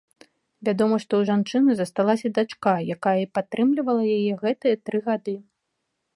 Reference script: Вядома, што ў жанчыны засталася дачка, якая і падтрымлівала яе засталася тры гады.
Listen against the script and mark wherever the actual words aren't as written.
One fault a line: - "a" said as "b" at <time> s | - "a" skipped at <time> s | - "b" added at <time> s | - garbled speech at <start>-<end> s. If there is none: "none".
- "засталася" said as "гэтыя" at 4.4 s